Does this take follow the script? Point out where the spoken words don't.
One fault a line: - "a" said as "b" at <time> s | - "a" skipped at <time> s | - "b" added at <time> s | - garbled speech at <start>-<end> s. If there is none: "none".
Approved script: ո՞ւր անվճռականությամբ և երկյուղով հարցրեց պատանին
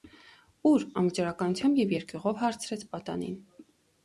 none